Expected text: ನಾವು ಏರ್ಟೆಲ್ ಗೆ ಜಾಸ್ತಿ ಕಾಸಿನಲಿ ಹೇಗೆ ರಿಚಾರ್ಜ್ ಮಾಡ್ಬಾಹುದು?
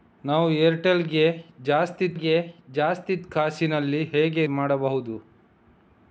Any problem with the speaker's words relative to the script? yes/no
yes